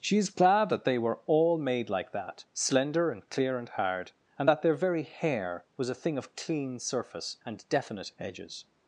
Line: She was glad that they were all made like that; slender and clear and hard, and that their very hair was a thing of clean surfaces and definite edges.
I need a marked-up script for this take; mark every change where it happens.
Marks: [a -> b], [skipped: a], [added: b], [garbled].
She [was -> is] glad that they were all made like that; slender and clear and hard, and that their very hair was a thing of clean [surfaces -> surface] and definite edges.